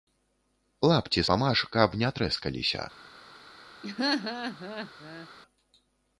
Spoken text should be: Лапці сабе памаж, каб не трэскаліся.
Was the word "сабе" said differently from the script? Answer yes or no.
yes